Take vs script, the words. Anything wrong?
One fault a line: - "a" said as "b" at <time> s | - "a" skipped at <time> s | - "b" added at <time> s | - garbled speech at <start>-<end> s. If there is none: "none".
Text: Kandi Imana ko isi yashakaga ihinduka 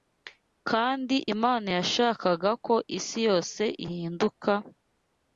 - "yashakaga" added at 1.8 s
- "yashakaga" said as "yose" at 3.3 s